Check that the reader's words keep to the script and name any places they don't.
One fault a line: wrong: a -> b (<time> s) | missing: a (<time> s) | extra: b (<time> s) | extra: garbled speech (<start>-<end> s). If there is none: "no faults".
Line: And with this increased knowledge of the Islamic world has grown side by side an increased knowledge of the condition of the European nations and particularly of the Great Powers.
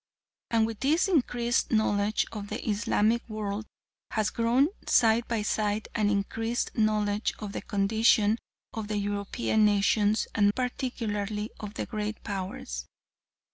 no faults